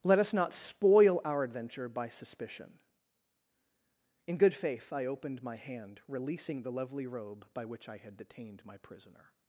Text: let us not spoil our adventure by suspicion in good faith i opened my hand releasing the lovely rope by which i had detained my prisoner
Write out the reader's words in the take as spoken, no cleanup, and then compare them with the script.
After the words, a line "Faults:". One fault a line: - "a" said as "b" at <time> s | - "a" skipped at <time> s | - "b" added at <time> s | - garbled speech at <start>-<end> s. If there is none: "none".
let us not spoil our adventure by suspicion in good faith i opened my hand releasing the lovely robe by which i had detained my prisoner
Faults:
- "rope" said as "robe" at 7.1 s